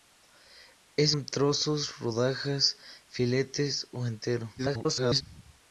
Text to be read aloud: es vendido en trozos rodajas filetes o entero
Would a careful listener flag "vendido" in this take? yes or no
yes